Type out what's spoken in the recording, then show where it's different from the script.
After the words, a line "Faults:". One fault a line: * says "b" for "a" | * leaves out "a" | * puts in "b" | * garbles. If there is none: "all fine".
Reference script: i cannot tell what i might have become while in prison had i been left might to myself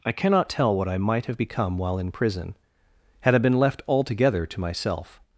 i cannot tell what i might have become while in prison had i been left altogether to myself
Faults:
* says "altogether" for "might"